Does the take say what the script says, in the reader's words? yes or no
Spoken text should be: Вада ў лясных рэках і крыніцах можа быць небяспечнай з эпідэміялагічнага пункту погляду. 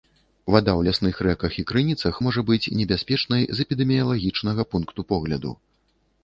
yes